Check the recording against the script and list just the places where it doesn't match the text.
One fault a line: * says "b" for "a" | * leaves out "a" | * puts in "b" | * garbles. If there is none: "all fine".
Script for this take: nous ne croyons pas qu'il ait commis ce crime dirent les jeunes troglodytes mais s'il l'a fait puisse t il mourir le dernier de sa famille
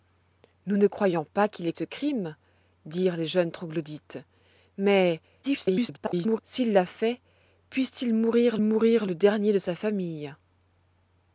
* leaves out "commis"
* garbles
* puts in "mourir"